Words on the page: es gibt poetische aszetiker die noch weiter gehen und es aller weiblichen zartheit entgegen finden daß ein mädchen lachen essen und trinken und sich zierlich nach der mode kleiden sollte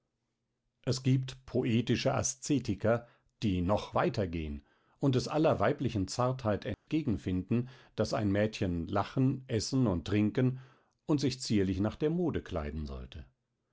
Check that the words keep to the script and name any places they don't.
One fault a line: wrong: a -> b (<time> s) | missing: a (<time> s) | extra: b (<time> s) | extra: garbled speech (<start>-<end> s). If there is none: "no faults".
no faults